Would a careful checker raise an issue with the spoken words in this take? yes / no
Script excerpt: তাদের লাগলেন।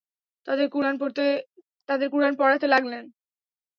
yes